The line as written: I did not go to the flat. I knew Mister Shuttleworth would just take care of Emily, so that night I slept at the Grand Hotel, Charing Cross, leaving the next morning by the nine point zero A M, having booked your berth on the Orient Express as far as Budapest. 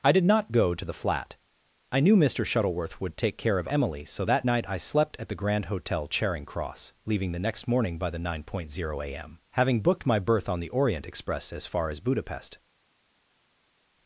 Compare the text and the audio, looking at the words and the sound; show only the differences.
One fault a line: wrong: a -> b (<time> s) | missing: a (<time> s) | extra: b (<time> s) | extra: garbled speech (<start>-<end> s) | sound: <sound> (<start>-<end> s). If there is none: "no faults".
missing: just (3.2 s)
wrong: your -> my (10.1 s)